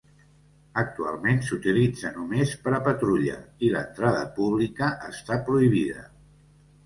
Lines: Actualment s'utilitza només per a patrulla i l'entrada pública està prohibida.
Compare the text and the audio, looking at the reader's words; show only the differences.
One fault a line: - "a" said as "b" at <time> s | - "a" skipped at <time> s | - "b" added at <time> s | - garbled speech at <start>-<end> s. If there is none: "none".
none